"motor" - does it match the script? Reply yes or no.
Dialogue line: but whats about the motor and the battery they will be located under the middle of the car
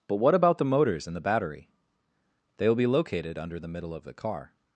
no